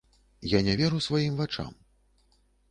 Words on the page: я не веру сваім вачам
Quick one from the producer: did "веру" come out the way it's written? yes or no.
yes